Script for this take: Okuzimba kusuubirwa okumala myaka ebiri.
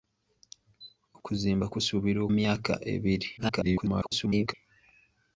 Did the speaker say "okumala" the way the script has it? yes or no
no